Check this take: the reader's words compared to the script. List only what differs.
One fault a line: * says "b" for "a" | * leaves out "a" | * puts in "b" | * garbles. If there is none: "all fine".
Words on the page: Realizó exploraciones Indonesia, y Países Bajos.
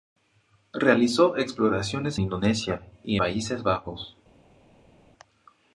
all fine